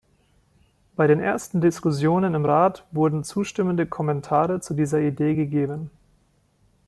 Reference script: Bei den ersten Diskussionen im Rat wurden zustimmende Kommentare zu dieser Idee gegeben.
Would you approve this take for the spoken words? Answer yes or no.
yes